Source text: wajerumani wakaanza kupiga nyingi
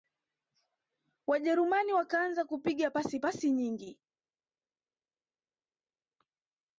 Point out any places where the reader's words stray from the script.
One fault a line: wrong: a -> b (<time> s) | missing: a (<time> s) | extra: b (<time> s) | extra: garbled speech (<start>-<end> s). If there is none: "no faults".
extra: pasi pasi (2.9 s)